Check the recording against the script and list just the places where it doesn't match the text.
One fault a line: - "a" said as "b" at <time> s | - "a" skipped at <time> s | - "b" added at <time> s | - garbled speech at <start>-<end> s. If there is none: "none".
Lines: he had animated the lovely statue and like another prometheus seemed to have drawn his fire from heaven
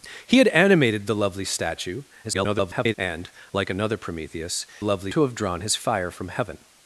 - garbled speech at 2.2-2.9 s
- "seemed" said as "lovely" at 4.8 s